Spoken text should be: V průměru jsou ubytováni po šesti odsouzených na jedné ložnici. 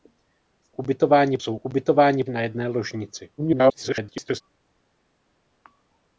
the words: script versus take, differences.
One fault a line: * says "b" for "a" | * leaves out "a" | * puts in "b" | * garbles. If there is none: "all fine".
* says "ubytováni" for "průměru"
* leaves out "po šesti odsouzených"
* garbles